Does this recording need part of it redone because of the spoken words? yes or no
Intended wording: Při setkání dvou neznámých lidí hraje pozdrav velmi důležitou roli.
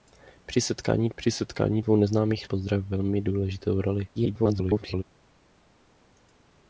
yes